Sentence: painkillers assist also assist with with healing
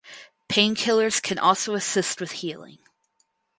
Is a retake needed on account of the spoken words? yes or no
yes